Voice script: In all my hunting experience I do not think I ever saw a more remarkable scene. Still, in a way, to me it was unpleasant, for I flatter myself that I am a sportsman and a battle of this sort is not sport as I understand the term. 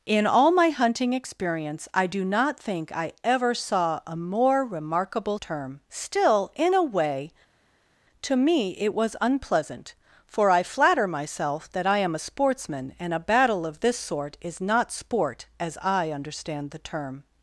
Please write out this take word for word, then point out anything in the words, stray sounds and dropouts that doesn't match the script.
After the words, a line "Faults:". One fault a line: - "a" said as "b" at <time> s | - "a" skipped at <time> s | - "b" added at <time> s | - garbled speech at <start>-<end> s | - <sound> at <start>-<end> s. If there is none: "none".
In all my hunting experience I do not think I ever saw a more remarkable term. Still, in a way, to me it was unpleasant, for I flatter myself that I am a sportsman and a battle of this sort is not sport as I understand the term.
Faults:
- "scene" said as "term" at 5.4 s